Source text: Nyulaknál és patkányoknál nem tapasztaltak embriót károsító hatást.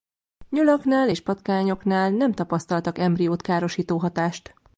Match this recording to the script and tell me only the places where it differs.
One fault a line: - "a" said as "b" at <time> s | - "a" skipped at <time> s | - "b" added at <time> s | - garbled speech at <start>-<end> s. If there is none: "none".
none